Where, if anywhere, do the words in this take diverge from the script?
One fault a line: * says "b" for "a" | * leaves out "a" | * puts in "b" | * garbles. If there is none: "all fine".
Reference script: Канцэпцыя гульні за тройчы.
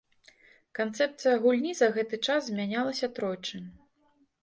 * puts in "гэты час змянялася"